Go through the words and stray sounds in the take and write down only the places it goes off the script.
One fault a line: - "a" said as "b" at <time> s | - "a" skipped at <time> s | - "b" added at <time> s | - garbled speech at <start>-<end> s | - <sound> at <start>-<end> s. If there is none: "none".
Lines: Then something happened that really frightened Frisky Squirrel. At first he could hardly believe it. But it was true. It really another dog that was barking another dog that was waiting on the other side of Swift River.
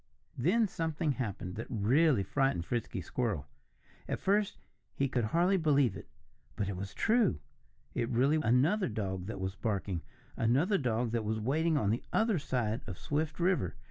none